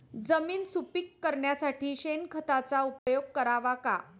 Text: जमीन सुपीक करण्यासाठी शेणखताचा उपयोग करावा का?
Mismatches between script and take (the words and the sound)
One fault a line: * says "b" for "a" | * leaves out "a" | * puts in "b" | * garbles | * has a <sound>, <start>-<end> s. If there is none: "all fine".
* has a dropout, 3.0-3.1 s